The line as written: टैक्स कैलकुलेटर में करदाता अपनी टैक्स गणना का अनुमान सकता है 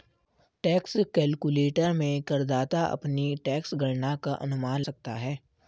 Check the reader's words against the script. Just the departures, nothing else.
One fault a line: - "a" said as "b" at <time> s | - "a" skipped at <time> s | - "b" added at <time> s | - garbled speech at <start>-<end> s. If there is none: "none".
none